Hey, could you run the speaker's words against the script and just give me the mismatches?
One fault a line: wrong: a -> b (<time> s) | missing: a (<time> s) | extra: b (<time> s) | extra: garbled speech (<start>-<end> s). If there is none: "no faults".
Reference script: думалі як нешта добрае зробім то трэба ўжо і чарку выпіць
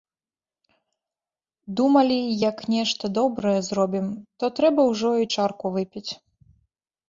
no faults